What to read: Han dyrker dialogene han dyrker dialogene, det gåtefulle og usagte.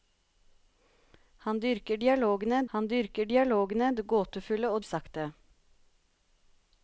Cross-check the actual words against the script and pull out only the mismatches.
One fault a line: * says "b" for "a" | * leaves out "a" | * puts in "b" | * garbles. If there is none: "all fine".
all fine